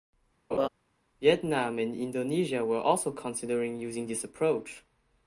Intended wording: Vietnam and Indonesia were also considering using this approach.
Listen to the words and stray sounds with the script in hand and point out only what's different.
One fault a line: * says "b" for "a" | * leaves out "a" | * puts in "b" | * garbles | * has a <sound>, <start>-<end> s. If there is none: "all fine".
* has a laugh, 0.5-0.7 s